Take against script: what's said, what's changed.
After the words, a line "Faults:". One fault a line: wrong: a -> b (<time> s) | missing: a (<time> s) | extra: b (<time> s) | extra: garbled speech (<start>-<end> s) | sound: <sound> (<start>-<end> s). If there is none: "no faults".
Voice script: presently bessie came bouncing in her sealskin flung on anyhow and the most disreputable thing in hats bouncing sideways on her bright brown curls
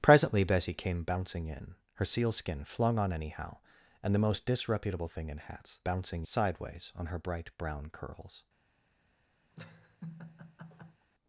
presently bessie came bouncing in her sealskin flung on anyhow and the most disreputable thing in hats bouncing sideways on her bright brown curls
Faults:
sound: laugh (9.5-11.1 s)